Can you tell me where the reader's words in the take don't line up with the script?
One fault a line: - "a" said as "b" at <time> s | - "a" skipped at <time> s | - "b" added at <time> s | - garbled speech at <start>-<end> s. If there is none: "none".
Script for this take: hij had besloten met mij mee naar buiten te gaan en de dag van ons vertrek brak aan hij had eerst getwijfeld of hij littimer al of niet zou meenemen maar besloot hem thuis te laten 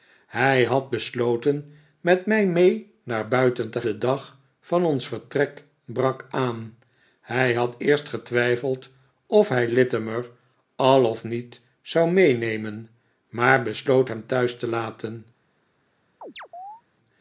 - "gaan en" skipped at 3.8 s